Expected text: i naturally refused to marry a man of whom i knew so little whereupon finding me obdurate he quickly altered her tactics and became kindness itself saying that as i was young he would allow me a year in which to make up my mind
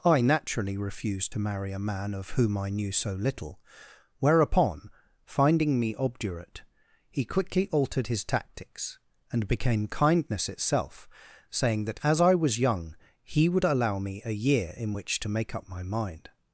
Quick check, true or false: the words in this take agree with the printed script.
false